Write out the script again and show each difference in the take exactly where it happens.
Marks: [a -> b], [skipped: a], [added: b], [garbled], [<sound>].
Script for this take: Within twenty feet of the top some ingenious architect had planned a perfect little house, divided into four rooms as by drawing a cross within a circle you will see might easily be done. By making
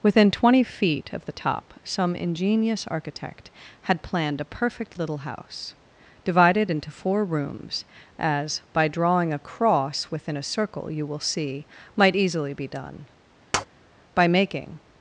Within twenty feet of the top some ingenious architect had planned a perfect little house, divided into four rooms as by drawing a cross within a circle you will see might easily be done. [tap] By making